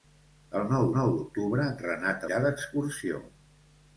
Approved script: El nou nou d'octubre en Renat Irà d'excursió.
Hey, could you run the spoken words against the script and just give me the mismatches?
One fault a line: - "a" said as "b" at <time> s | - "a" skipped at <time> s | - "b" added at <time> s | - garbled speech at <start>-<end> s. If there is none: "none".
none